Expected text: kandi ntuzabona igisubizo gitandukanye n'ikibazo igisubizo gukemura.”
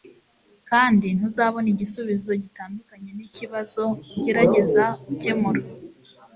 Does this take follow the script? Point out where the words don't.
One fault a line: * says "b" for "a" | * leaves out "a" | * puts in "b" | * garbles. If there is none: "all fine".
* says "ugerageza" for "igisubizo"